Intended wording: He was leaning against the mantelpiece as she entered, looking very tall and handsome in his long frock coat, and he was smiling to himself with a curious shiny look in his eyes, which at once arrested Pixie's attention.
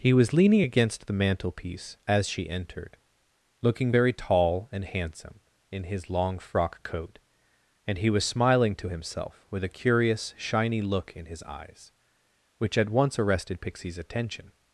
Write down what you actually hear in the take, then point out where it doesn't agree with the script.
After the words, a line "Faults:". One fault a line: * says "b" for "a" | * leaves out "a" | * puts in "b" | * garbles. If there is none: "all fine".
He was leaning against the mantelpiece as she entered, looking very tall and handsome in his long frock coat, and he was smiling to himself with a curious shiny look in his eyes, which at once arrested Pixie's attention.
Faults:
all fine